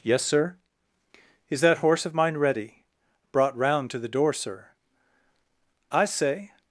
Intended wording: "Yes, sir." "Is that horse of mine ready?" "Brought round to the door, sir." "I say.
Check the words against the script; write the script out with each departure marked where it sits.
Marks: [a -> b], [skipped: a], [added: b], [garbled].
"Yes, sir." "Is that horse of mine ready?" "Brought round to the door, sir." "I say.